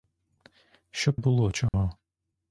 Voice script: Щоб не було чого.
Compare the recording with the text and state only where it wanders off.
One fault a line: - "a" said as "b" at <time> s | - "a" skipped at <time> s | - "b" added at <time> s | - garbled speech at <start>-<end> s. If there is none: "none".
- "не" skipped at 1.2 s